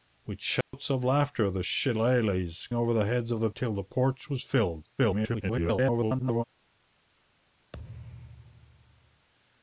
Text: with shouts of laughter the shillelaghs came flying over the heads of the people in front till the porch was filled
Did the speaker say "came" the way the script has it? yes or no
no